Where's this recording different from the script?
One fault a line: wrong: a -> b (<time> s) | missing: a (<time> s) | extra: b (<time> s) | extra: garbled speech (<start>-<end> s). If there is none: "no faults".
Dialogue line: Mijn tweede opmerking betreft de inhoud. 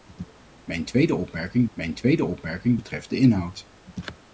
extra: mijn tweede opmerking (1.7 s)